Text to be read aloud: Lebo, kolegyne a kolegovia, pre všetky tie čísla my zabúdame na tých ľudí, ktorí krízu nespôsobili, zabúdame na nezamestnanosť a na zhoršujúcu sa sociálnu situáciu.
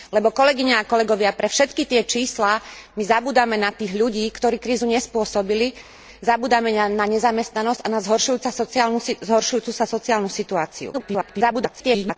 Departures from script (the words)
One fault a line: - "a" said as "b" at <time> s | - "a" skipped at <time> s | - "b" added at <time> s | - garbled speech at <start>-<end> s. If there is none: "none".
- garbled speech at 10.9-12.2 s